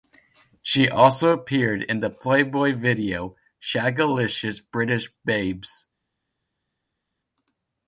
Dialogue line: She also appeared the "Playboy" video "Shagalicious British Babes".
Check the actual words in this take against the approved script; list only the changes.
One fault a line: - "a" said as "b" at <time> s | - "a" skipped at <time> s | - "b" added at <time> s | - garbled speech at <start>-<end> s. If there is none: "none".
- "in" added at 1.8 s